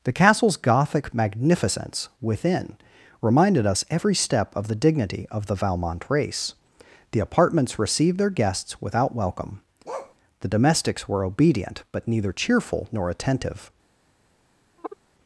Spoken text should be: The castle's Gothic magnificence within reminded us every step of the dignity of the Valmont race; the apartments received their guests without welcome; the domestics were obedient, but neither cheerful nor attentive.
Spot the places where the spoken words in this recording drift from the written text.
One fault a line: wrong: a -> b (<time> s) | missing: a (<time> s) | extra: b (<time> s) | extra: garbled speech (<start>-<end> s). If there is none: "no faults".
no faults